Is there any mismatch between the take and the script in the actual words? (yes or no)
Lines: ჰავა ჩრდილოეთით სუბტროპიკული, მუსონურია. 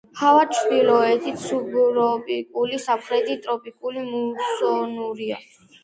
yes